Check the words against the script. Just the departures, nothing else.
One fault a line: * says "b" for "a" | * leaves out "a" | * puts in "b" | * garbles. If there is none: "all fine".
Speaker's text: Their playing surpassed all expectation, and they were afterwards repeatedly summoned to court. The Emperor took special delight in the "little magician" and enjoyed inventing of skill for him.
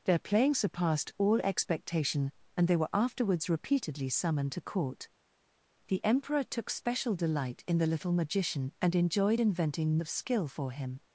all fine